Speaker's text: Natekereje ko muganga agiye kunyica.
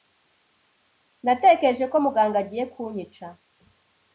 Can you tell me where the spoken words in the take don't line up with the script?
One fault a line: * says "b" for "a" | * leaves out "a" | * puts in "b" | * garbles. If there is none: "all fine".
all fine